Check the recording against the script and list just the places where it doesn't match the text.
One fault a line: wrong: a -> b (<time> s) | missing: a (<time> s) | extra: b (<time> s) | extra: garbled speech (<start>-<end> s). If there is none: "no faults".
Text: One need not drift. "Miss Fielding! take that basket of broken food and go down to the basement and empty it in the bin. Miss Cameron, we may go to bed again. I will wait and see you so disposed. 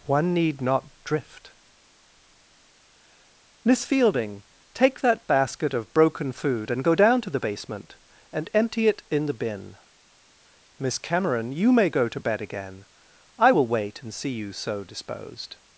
wrong: we -> you (11.5 s)